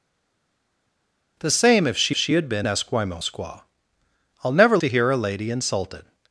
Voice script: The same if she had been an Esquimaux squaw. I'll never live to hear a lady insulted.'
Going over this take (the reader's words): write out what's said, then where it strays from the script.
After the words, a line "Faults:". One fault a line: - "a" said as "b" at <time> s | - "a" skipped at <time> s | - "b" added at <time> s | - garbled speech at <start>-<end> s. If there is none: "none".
The same if she she had been Esquimaux squaw. I'll never to hear a lady insulted.'
Faults:
- "she" added at 2.1 s
- "an" skipped at 2.7 s
- "live" skipped at 4.8 s